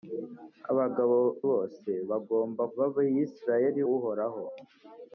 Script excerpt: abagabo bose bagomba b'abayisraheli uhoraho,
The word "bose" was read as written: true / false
true